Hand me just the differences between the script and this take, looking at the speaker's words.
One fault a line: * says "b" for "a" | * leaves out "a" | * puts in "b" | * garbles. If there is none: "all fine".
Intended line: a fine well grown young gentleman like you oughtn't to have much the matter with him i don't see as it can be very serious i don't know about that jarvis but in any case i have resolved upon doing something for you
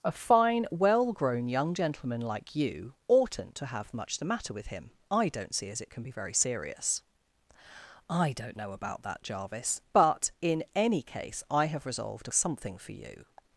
* leaves out "upon doing"